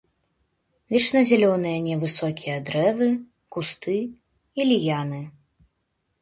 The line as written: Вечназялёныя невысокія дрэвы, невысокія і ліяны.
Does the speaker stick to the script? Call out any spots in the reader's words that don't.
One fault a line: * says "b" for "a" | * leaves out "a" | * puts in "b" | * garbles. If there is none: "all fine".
* says "кусты" for "невысокія"